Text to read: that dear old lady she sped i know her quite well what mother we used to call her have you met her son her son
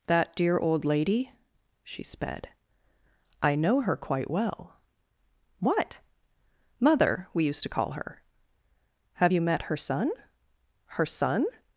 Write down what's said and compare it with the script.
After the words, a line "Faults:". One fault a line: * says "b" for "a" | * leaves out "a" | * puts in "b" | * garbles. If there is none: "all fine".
that dear old lady she sped i know her quite well what mother we used to call her have you met her son her son
Faults:
all fine